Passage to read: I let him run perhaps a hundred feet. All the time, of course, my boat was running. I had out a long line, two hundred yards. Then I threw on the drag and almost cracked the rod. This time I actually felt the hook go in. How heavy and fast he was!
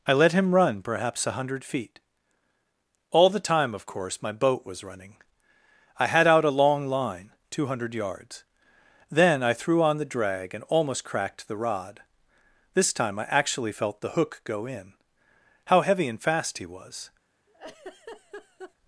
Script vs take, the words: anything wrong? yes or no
no